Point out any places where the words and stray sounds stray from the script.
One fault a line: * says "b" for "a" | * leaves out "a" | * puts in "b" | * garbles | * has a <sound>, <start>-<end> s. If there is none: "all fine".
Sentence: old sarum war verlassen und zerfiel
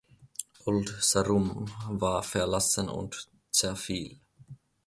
all fine